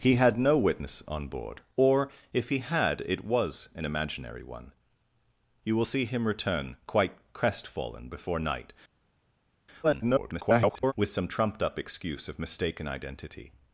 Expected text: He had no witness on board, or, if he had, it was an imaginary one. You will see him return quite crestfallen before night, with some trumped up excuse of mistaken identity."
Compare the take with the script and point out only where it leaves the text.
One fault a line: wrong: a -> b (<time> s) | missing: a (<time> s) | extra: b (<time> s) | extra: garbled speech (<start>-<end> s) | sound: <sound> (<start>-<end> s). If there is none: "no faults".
extra: garbled speech (9.8-10.9 s)